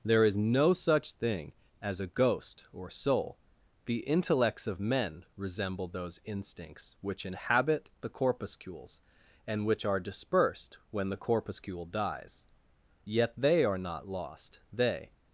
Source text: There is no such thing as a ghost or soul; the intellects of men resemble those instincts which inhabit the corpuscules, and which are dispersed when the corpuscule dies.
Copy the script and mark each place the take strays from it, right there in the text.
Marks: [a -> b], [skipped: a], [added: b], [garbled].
There is no such thing as a ghost or soul; the intellects of men resemble those instincts which inhabit the corpuscules, and which are dispersed when the corpuscule dies. [added: Yet they are not lost they]